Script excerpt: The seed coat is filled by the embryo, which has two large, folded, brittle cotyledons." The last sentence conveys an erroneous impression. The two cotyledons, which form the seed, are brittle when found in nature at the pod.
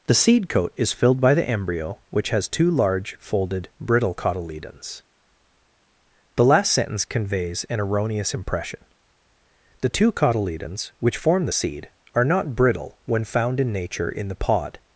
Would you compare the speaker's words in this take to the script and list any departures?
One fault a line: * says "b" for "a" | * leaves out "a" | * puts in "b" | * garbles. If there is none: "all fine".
* puts in "not"
* says "in" for "at"